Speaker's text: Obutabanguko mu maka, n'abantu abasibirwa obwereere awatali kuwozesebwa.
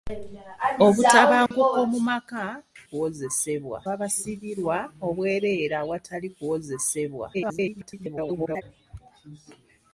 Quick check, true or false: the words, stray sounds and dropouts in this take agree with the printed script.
false